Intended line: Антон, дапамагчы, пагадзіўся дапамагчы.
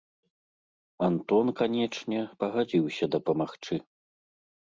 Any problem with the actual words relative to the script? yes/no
yes